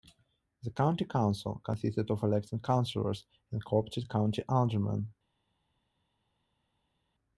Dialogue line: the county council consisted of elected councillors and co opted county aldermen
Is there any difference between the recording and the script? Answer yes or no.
no